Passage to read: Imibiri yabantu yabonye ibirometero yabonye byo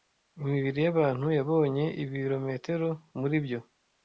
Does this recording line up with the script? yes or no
no